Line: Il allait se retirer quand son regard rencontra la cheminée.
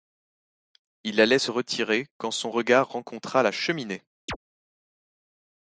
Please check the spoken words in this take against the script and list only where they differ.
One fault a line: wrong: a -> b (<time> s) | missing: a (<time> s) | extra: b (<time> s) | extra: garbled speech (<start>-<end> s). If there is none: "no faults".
no faults